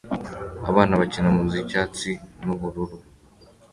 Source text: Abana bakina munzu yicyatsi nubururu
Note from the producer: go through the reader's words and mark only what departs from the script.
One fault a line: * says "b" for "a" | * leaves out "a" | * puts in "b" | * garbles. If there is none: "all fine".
all fine